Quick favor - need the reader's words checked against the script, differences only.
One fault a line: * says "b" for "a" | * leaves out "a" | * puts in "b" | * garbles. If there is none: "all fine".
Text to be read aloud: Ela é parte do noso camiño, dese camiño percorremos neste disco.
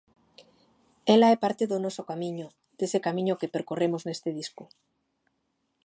* puts in "que"